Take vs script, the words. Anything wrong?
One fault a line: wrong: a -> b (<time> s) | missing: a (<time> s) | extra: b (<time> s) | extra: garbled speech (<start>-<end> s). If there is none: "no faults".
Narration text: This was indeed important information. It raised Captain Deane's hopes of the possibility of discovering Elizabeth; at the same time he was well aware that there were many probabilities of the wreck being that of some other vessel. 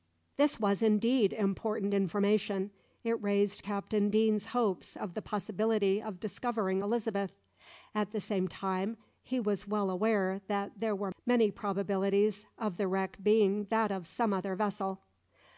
no faults